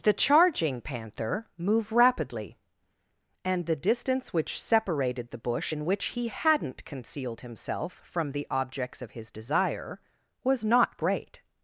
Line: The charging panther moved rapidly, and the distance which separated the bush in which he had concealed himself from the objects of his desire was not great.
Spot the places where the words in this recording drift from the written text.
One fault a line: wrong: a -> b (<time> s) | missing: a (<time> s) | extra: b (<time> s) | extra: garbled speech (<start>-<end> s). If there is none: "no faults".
wrong: moved -> move (1.6 s)
wrong: had -> hadn't (6.3 s)